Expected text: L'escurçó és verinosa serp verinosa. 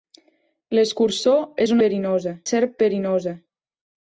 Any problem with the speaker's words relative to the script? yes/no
no